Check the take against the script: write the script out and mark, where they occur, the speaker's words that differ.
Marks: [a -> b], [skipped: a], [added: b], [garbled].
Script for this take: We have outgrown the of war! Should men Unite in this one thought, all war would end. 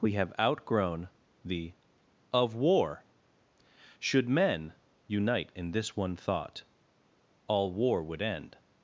We have outgrown the of war! Should men Unite in this one thought, all war would end.